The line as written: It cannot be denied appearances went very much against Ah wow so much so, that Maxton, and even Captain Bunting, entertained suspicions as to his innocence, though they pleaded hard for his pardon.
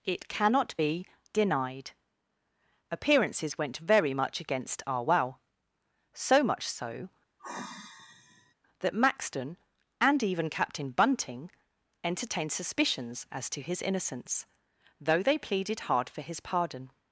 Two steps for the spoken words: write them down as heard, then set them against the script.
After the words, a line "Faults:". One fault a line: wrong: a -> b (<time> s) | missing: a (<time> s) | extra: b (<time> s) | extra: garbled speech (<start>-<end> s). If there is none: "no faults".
It cannot be denied appearances went very much against Ah wow so much so, that Maxton, and even Captain Bunting, entertained suspicions as to his innocence, though they pleaded hard for his pardon.
Faults:
no faults